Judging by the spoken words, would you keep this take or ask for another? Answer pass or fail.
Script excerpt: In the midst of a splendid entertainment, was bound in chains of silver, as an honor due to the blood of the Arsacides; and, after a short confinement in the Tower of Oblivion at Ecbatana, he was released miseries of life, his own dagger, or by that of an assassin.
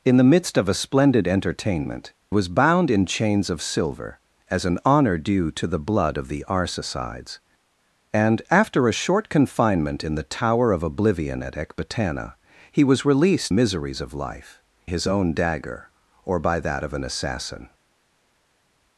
pass